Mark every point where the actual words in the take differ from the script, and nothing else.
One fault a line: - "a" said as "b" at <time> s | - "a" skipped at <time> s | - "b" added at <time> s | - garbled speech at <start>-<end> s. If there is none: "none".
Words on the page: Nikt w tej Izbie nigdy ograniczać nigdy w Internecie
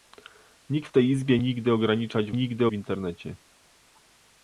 none